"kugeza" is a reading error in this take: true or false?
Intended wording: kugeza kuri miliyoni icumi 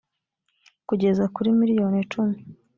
false